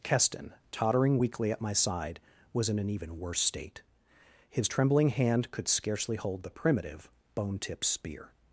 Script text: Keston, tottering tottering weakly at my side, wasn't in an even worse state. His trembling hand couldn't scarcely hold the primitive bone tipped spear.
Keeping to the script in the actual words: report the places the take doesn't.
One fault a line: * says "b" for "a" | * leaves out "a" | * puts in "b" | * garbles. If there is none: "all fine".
* leaves out "tottering"
* says "was" for "wasn't"
* says "could" for "couldn't"